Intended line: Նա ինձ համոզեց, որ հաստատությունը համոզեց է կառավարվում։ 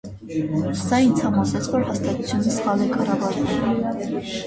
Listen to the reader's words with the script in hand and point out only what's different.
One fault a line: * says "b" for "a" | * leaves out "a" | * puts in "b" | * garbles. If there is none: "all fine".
* says "Սա" for "Նա"
* says "սխալ" for "համոզեց"